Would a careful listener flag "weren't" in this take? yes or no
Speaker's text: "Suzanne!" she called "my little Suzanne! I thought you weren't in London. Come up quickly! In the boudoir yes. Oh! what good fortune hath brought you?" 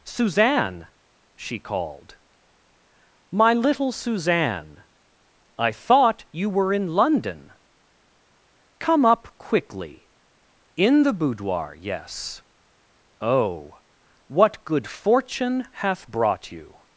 yes